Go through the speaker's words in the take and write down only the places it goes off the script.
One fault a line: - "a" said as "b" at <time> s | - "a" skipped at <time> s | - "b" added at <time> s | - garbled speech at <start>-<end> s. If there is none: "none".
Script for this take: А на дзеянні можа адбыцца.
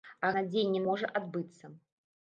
none